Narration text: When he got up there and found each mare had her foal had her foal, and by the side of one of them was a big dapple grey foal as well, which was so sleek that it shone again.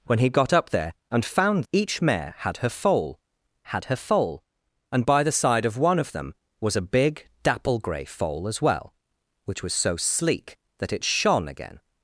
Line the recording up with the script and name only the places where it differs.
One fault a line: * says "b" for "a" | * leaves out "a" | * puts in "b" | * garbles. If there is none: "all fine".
all fine